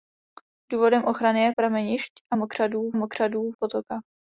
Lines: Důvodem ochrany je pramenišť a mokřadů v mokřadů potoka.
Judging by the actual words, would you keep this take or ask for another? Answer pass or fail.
pass